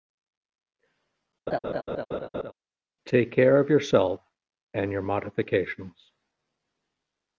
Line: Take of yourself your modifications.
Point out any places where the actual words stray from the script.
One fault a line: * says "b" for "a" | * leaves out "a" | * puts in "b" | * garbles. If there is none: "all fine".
* puts in "care"
* puts in "and"